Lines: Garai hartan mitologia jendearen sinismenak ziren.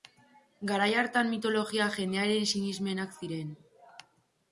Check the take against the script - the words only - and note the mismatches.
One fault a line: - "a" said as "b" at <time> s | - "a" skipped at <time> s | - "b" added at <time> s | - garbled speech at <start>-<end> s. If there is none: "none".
none